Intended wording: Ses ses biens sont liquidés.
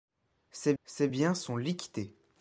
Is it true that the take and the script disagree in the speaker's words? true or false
false